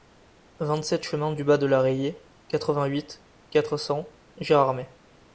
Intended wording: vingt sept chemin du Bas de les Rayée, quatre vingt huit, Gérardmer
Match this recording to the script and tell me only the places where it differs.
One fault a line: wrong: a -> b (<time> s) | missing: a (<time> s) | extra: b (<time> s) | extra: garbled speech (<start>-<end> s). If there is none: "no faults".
wrong: les -> la (1.7 s)
extra: quatre cents (3.5 s)